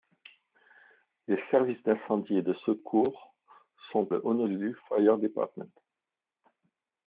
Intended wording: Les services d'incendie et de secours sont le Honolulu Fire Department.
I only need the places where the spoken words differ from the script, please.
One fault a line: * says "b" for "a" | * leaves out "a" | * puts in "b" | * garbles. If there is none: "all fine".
all fine